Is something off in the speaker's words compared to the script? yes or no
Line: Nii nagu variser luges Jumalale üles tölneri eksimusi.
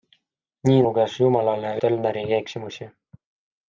yes